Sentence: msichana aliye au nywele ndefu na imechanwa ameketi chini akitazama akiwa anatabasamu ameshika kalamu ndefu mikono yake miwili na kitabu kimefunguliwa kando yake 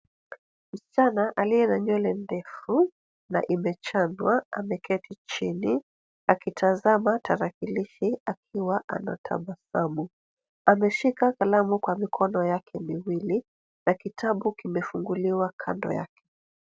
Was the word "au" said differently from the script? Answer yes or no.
yes